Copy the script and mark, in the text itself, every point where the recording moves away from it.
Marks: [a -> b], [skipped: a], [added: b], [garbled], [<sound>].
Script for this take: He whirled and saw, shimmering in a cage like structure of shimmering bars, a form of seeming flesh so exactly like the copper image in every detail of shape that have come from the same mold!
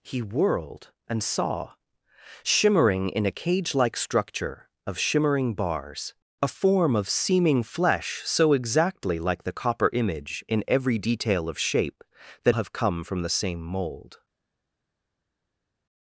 He whirled and saw, shimmering in a cage like structure of shimmering bars, a form of seeming flesh so exactly like the copper image in every detail of shape that have come from the same mold!